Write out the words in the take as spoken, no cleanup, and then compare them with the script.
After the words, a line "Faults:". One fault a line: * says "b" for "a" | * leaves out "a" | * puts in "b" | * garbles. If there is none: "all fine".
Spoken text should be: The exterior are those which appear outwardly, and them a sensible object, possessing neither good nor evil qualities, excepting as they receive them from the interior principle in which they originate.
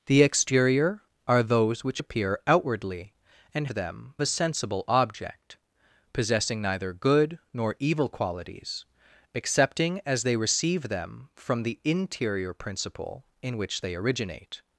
The exterior are those which appear outwardly, and them a sensible object, possessing neither good nor evil qualities, excepting as they receive them from the interior principle in which they originate.
Faults:
all fine